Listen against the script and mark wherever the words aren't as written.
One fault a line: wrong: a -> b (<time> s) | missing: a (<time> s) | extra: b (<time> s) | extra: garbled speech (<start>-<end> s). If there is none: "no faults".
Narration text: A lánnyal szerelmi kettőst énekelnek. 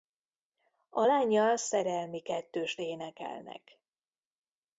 no faults